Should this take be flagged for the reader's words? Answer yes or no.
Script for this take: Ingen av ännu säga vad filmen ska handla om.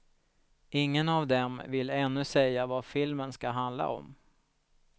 yes